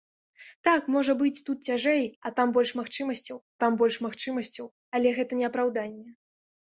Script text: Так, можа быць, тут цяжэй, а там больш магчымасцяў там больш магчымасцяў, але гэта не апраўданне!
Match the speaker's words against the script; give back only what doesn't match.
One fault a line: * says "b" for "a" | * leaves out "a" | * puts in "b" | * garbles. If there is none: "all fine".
all fine